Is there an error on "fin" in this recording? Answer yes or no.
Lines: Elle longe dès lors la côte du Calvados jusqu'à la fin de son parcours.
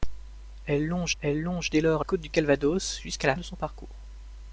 yes